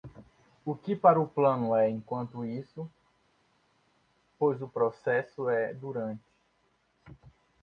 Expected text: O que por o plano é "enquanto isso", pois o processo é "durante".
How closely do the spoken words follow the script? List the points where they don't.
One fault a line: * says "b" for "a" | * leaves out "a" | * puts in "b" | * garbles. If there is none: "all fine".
* says "para" for "por"